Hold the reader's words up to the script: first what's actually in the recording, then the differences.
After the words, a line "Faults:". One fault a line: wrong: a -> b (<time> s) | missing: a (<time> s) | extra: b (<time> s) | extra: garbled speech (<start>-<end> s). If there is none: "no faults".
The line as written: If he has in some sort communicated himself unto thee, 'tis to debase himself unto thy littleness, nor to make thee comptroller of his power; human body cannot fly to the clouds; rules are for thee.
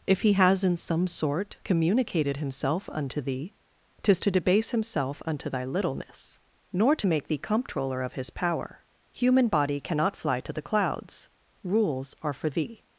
If he has in some sort communicated himself unto thee, 'tis to debase himself unto thy littleness, nor to make thee comptroller of his power; human body cannot fly to the clouds; rules are for thee.
Faults:
no faults